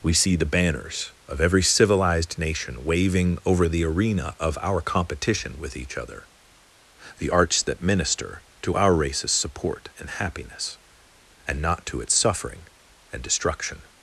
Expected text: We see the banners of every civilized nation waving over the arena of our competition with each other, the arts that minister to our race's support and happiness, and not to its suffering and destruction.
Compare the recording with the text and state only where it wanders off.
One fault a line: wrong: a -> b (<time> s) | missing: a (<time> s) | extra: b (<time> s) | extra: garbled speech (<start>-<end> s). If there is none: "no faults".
no faults